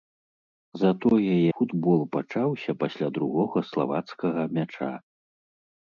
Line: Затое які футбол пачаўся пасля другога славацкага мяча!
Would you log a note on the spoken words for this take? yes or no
yes